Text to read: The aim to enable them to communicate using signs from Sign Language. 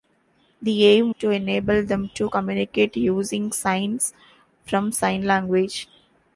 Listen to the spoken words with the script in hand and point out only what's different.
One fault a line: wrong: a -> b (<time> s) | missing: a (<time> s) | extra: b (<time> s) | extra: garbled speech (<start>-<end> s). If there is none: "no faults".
no faults